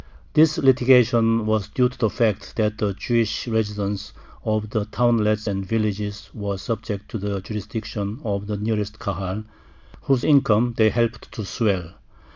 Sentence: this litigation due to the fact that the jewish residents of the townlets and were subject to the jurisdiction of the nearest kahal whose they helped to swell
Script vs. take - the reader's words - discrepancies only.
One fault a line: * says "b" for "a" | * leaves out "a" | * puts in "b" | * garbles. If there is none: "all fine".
* puts in "was"
* puts in "villages"
* puts in "income"